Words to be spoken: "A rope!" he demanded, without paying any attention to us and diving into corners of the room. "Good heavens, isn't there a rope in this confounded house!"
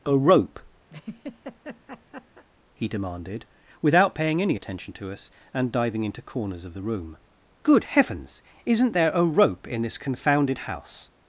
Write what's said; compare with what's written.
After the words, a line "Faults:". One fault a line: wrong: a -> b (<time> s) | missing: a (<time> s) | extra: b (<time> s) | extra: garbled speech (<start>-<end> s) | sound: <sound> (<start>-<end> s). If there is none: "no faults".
"A rope!" he demanded, without paying any attention to us and diving into corners of the room. "Good heavens, isn't there a rope in this confounded house!"
Faults:
sound: laugh (0.9-2.4 s)